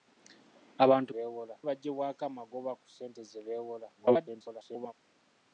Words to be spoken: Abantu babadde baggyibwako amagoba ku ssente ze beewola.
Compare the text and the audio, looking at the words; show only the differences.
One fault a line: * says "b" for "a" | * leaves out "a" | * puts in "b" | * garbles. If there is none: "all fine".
* says "beewola" for "babadde"
* garbles